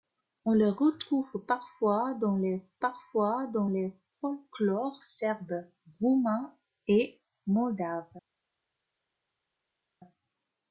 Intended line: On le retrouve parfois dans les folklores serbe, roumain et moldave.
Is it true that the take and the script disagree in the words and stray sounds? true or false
true